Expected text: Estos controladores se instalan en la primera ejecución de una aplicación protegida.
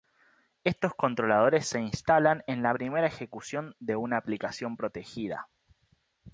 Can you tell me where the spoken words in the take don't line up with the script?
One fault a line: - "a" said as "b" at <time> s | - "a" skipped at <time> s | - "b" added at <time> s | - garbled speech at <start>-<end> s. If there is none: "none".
none